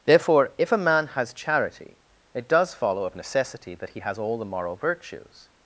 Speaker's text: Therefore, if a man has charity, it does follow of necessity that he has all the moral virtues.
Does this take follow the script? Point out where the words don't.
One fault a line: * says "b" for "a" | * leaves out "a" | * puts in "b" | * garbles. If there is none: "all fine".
all fine